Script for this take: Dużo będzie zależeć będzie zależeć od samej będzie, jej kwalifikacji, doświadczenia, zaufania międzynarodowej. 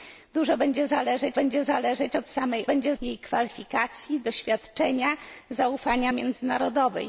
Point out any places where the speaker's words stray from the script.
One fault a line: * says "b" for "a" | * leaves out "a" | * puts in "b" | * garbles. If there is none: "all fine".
all fine